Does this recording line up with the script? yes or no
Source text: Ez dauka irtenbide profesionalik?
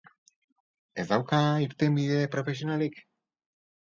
yes